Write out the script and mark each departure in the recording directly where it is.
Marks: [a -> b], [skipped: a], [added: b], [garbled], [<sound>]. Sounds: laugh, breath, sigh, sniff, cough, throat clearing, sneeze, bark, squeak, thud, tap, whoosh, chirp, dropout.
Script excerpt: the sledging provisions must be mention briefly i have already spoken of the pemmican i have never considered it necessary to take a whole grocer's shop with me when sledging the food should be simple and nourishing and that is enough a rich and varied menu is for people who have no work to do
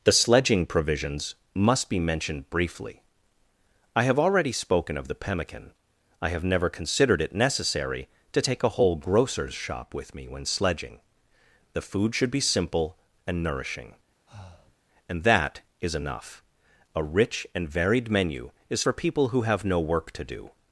the sledging provisions must be [mention -> mentioned] briefly i have already spoken of the pemmican i have never considered it necessary to take a whole grocer's shop with me when sledging the food should be simple and nourishing [breath] and that is enough a rich and varied menu is for people who have no work to do